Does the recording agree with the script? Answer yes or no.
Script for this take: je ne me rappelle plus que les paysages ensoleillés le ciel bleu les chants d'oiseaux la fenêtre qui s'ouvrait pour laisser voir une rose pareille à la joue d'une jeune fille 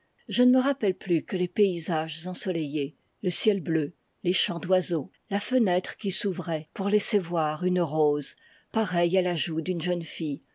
yes